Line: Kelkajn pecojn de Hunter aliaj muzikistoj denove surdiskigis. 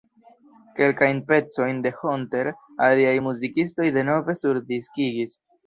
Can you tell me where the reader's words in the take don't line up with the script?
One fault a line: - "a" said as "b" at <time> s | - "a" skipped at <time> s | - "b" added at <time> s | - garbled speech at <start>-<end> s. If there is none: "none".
none